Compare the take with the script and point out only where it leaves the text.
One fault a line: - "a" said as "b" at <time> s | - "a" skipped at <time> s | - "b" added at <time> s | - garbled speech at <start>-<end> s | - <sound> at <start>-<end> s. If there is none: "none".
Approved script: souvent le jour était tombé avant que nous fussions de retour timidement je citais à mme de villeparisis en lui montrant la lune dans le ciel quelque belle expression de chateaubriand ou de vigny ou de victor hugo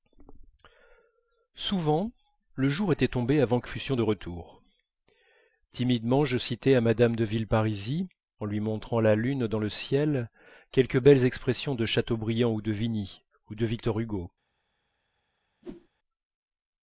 - "nous" skipped at 3.7 s
- whoosh at 15.6-15.9 s